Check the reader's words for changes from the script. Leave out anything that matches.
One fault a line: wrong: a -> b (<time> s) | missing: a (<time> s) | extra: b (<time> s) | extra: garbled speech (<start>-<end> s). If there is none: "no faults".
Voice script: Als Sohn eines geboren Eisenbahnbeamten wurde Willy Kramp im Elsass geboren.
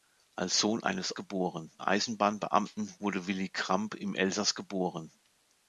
no faults